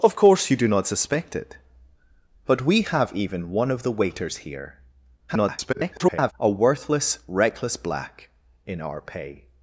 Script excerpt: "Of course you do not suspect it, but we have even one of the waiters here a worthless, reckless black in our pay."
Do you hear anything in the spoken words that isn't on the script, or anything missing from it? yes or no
yes